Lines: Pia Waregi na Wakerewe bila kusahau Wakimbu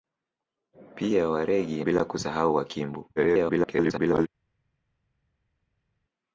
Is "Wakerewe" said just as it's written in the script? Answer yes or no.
no